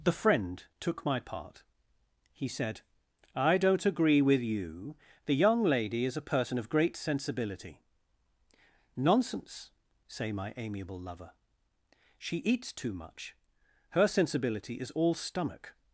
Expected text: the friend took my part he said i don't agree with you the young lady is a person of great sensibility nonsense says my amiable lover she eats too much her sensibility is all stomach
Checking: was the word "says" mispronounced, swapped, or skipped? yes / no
yes